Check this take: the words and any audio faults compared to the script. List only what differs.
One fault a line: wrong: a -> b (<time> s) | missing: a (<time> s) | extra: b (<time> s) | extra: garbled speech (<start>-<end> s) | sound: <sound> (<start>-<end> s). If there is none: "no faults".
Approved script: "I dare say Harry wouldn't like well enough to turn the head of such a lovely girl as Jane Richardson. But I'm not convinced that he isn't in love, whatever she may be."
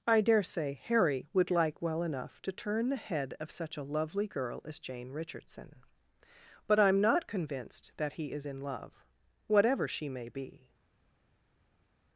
wrong: wouldn't -> would (1.3 s)
wrong: isn't -> is (8.3 s)